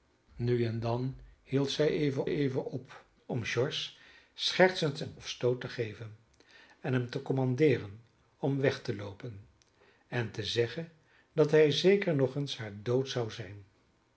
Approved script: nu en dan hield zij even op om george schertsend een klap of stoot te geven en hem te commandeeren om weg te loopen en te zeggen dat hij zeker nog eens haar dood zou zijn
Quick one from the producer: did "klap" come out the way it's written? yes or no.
no